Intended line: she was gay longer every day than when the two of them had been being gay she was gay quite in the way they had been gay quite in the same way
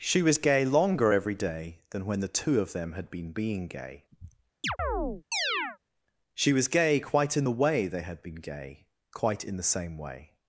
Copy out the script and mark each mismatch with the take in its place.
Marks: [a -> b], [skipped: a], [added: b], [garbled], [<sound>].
she was gay longer every day than when the two of them had been being gay [chirp] she was gay quite in the way they had been gay quite in the same way